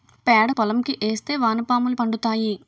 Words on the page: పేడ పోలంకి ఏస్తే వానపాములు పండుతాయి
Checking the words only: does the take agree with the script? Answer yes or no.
yes